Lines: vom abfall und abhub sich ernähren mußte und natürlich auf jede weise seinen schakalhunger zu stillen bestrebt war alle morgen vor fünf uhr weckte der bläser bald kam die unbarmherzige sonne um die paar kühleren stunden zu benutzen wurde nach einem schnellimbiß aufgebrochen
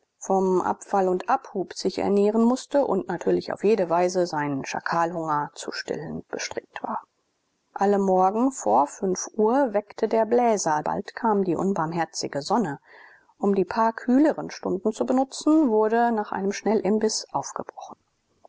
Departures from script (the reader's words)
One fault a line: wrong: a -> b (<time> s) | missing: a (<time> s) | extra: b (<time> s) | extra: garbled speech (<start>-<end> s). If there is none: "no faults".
no faults